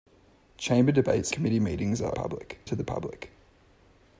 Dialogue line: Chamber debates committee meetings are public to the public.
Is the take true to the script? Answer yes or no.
yes